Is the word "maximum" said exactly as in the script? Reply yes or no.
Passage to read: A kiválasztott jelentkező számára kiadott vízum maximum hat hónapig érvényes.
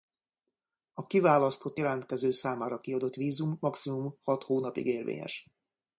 yes